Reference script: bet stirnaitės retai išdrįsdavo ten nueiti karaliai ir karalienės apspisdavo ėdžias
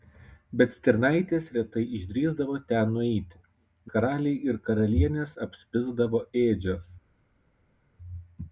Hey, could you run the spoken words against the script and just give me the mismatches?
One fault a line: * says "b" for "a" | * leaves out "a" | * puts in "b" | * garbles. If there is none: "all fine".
all fine